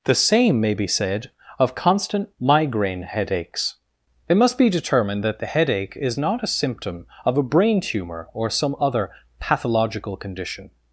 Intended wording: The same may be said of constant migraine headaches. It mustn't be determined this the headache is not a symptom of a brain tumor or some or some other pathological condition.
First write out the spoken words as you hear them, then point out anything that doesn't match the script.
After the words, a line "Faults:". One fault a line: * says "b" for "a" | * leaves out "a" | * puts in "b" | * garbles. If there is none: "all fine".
The same may be said of constant migraine headaches. It must be determined that the headache is not a symptom of a brain tumor or some other pathological condition.
Faults:
* says "must" for "mustn't"
* says "that" for "this"
* leaves out "or some"